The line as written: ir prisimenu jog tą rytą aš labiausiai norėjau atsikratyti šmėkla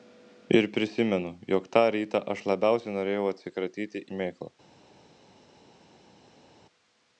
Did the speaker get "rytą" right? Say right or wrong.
right